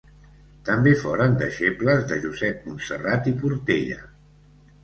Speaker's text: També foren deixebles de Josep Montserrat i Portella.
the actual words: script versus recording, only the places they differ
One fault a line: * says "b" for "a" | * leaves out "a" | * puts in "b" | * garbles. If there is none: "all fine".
all fine